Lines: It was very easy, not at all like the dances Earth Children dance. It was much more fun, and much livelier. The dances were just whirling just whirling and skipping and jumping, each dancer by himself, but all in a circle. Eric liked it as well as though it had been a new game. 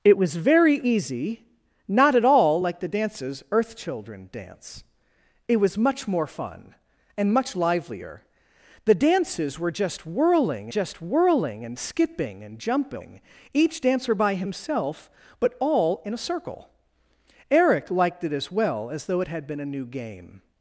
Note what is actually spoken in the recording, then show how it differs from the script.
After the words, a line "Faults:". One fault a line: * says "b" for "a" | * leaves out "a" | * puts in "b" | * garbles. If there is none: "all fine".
It was very easy, not at all like the dances Earth Children dance. It was much more fun, and much livelier. The dances were just whirling just whirling and skipping and jumping, each dancer by himself, but all in a circle. Eric liked it as well as though it had been a new game.
Faults:
all fine